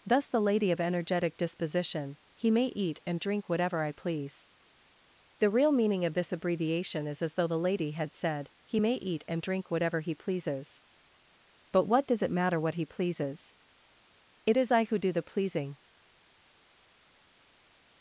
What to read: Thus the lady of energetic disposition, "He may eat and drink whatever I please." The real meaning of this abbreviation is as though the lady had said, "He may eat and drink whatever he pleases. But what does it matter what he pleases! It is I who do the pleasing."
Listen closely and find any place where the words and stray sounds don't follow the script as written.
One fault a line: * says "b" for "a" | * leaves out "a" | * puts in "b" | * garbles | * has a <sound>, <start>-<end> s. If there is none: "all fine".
all fine